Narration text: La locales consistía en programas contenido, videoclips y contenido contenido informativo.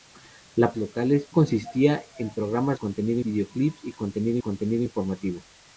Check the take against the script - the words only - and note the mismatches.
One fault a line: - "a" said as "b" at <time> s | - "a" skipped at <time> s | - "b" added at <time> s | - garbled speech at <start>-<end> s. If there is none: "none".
none